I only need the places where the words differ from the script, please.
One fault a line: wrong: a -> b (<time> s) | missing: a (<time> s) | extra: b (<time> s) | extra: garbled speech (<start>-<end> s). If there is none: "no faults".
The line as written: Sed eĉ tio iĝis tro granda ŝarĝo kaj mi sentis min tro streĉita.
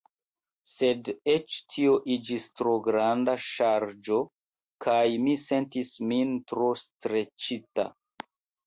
no faults